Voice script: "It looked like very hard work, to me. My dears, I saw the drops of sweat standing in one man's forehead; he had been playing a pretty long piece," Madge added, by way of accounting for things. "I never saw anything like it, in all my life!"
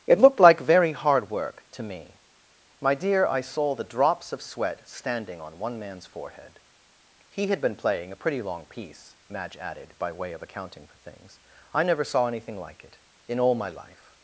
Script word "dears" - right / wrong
wrong